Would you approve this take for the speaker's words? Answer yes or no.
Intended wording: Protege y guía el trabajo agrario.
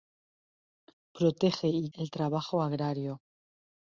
no